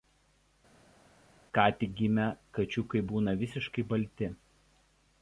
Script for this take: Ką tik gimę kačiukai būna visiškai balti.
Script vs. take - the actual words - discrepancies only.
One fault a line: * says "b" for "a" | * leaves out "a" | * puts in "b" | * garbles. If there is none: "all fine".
all fine